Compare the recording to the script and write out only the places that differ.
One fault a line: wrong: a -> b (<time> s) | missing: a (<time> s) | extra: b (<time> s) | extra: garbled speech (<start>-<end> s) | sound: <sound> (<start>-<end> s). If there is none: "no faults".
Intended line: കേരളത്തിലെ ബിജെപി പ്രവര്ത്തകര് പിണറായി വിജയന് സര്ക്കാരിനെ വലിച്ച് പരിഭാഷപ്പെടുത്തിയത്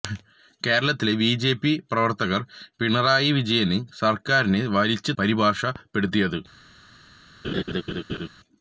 sound: laugh (7.4-8.3 s)